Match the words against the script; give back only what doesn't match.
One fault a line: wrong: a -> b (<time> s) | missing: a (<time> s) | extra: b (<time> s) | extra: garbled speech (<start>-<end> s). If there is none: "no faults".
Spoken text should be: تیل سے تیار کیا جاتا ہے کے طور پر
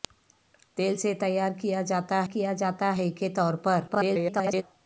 extra: کیا جاتا (2.3 s)
extra: garbled speech (3.9-4.6 s)